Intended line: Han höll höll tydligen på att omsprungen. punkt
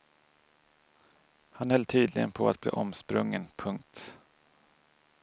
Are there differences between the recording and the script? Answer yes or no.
yes